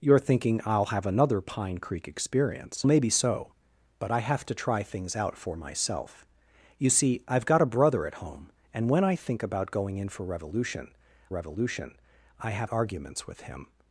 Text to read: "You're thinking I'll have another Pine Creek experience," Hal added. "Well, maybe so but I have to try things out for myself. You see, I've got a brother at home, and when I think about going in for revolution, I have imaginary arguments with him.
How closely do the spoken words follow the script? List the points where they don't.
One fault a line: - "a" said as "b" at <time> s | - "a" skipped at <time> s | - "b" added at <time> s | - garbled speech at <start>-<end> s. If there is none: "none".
- "Hal added Well" skipped at 2.9 s
- "revolution" added at 11.3 s
- "imaginary" skipped at 12.7 s